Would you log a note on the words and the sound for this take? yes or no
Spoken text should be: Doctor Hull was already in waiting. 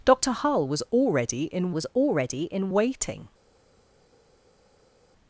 yes